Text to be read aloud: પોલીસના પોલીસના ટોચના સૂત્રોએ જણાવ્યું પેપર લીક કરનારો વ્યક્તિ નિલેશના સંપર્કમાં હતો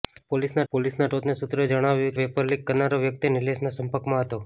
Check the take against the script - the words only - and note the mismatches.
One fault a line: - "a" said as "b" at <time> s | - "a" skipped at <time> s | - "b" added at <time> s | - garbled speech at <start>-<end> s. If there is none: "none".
none